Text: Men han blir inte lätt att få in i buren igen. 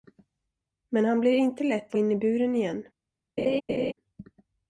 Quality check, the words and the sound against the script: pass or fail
fail